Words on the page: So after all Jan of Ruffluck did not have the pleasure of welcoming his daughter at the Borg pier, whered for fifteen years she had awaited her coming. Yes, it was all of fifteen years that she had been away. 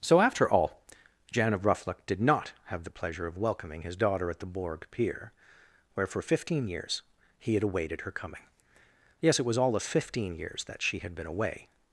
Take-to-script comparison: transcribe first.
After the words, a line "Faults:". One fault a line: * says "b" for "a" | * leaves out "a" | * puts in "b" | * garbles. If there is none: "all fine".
So after all Jan of Ruffluck did not have the pleasure of welcoming his daughter at the Borg pier, where for fifteen years he had awaited her coming. Yes, it was all of fifteen years that she had been away.
Faults:
* says "where" for "whered"
* says "he" for "she"